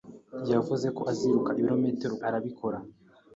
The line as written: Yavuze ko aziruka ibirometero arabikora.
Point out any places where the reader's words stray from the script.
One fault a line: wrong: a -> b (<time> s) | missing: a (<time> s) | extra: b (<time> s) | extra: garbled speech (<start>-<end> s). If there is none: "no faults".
no faults